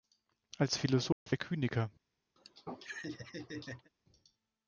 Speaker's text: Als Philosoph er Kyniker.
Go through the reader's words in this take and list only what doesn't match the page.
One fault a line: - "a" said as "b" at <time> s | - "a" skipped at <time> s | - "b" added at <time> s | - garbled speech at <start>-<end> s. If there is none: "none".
none